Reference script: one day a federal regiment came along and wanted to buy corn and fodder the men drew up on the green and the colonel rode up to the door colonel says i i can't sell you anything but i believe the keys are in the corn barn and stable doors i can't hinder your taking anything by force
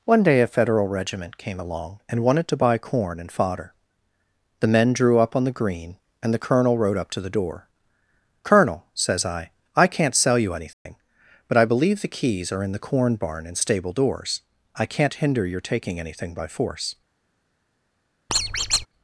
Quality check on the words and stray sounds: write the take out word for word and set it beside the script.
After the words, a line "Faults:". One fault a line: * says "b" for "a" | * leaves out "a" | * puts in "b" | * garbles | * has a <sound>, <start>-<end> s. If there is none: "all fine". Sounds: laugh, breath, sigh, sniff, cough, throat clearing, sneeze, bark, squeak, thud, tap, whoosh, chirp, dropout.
one day a federal regiment came along and wanted to buy corn and fodder the men drew up on the green and the colonel rode up to the door colonel says i i can't sell you anything but i believe the keys are in the corn barn and stable doors i can't hinder your taking anything by force
Faults:
* has a dropout, 10.7-10.9 s
* has a squeak, 18.3-18.9 s